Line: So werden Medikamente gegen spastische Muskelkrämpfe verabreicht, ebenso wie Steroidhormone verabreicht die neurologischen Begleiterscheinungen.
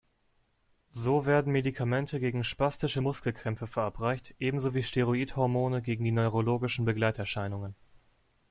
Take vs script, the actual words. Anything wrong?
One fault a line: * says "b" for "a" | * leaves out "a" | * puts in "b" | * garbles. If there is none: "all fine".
* says "gegen" for "verabreicht"